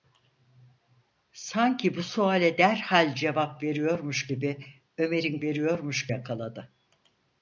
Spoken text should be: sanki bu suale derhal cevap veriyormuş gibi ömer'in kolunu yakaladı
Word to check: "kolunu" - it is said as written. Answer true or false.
false